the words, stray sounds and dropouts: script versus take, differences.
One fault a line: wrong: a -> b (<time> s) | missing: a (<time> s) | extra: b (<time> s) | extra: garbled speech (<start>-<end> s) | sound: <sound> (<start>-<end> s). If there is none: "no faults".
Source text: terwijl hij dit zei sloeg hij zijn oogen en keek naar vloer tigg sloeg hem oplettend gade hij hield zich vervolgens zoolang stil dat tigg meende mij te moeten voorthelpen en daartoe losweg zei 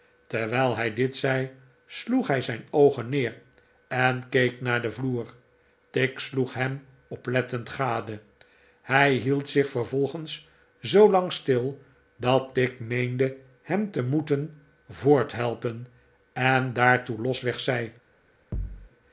extra: neer (3.1 s)
extra: den (4.8 s)
wrong: mij -> hem (13.6 s)
sound: thud (18.5-18.9 s)